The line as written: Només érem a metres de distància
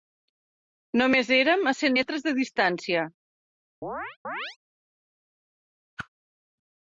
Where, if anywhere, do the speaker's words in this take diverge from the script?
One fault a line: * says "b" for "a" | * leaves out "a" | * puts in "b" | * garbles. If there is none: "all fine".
* puts in "cent"